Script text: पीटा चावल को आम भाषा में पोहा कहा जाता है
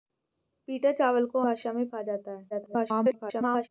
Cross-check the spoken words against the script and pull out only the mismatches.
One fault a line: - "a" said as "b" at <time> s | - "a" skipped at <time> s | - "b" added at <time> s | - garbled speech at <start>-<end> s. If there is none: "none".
- "आम" skipped at 1.4 s
- "पोहा" skipped at 1.9 s
- garbled speech at 2.5-3.7 s